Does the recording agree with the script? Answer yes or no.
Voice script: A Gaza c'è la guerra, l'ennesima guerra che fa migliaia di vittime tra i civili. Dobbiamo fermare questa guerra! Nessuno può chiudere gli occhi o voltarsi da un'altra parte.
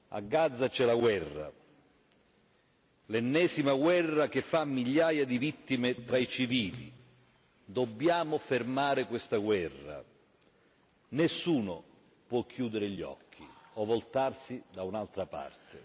yes